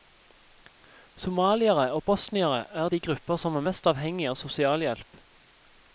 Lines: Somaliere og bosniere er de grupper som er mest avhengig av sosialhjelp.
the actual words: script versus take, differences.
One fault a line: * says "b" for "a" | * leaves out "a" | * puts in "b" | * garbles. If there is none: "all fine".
all fine